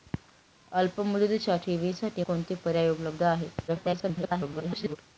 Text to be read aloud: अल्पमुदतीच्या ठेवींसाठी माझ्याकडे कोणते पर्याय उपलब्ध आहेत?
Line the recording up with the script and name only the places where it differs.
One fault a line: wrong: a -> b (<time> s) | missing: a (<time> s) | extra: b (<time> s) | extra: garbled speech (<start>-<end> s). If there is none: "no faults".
missing: माझ्याकडे (2.2 s)
extra: garbled speech (3.7-5.0 s)